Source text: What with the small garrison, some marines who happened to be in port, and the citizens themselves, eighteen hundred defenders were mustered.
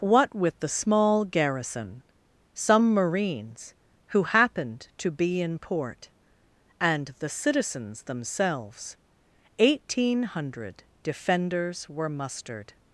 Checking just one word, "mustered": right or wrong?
right